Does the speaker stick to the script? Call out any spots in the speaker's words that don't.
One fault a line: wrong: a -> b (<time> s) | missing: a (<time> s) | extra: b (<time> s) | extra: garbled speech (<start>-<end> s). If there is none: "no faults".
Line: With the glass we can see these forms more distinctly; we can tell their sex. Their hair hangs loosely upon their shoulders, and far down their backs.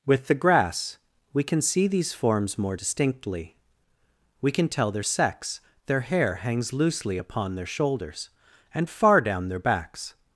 wrong: glass -> grass (0.3 s)